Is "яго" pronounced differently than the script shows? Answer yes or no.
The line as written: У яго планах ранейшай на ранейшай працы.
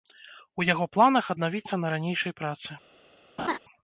no